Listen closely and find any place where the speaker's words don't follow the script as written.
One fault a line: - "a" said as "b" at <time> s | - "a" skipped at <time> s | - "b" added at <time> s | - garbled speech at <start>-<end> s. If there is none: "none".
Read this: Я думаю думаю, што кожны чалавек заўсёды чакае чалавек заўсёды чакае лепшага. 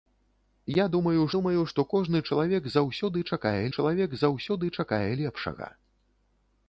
none